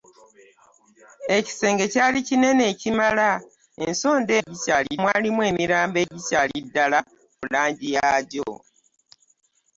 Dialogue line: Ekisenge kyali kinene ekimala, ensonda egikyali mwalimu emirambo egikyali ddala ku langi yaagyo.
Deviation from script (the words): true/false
false